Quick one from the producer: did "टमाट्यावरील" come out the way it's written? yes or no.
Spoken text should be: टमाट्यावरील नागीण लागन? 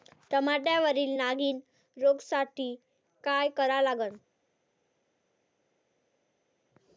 yes